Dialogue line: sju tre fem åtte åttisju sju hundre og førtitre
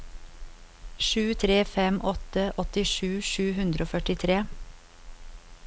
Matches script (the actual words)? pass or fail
pass